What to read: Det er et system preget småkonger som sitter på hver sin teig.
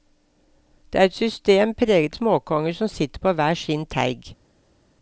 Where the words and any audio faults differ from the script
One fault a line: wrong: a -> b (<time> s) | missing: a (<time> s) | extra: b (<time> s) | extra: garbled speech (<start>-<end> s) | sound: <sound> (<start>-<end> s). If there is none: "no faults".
no faults